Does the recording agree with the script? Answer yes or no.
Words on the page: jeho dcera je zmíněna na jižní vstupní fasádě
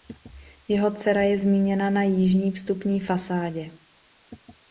yes